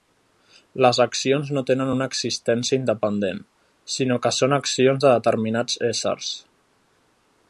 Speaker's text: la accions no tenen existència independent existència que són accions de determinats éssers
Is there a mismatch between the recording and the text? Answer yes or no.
yes